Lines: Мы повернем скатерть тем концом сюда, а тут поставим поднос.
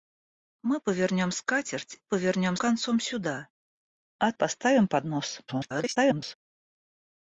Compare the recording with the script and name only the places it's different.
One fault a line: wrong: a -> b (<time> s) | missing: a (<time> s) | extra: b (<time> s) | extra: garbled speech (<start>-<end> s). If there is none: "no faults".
wrong: тем -> повернем (2.0 s)
missing: тут (4.3 s)
extra: garbled speech (5.5-6.3 s)